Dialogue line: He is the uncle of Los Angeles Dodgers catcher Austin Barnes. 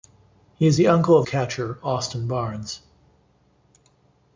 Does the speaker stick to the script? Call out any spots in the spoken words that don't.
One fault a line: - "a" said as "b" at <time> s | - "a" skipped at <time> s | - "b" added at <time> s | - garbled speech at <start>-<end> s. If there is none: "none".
- "Los Angeles Dodgers" skipped at 1.3 s